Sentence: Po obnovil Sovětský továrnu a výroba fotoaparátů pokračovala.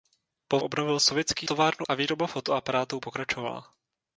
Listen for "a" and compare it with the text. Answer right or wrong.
right